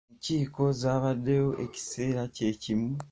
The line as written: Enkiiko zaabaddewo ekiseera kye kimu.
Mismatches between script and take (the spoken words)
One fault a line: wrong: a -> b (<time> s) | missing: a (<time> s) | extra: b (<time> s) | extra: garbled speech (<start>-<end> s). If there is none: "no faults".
no faults